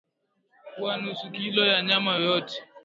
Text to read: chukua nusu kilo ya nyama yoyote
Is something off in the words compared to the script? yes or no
no